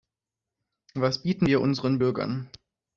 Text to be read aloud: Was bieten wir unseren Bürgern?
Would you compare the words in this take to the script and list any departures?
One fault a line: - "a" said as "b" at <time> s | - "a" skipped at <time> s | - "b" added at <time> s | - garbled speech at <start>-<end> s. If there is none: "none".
none